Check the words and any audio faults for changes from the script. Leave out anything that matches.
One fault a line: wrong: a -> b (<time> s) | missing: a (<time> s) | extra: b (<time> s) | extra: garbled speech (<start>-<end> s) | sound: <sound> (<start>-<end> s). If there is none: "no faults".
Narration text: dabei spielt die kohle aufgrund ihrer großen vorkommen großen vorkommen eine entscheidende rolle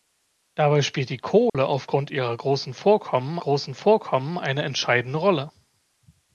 sound: dropout (1.5-1.5 s)